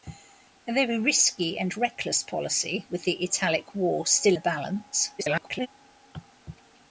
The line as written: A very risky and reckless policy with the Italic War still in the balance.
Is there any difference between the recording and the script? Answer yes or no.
yes